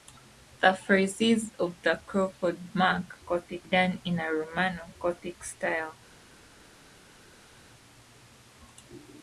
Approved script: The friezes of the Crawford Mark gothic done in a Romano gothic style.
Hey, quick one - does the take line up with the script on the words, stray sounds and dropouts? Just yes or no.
yes